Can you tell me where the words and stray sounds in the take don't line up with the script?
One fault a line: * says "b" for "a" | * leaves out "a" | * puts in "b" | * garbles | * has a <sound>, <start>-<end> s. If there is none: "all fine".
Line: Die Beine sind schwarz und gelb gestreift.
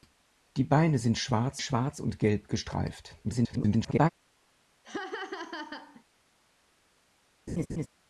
* puts in "schwarz"
* garbles
* has a laugh, 4.8-6.0 s
* has a laugh, 7.5-7.9 s